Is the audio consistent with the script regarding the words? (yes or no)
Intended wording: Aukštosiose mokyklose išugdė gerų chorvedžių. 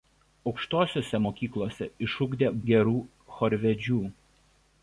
yes